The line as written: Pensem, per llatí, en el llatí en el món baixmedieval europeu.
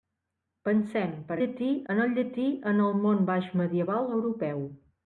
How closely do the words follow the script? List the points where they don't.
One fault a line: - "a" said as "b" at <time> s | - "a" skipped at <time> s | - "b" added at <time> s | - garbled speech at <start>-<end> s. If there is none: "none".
none